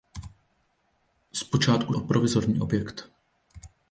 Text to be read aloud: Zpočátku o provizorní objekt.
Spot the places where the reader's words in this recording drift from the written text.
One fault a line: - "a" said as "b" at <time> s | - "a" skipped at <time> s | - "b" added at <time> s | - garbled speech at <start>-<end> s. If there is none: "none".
none